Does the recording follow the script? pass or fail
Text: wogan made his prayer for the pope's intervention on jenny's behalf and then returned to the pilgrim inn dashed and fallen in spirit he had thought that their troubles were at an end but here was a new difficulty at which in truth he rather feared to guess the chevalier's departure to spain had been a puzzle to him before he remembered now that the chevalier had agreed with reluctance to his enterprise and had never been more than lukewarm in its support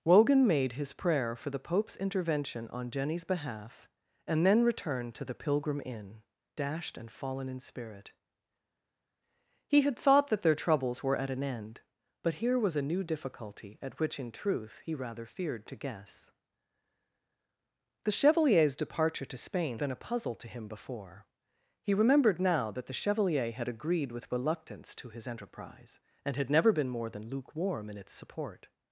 fail